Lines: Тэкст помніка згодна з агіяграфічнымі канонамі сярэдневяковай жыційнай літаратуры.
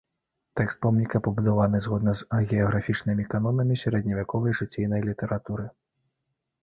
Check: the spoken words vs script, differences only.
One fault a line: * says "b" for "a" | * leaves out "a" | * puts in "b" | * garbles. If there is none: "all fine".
* puts in "пабудаваны"